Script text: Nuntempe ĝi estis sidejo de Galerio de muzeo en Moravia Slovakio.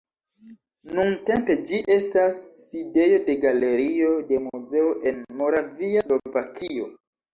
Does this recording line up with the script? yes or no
no